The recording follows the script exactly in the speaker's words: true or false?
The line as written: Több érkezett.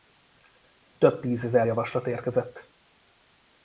false